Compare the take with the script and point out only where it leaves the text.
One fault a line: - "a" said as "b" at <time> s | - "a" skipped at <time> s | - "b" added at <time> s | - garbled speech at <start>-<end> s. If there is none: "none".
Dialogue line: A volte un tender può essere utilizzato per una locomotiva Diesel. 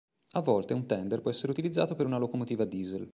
none